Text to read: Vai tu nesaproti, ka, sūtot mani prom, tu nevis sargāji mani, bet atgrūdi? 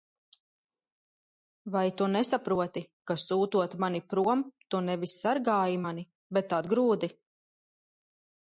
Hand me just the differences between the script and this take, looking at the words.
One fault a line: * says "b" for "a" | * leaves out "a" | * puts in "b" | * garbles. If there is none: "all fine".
all fine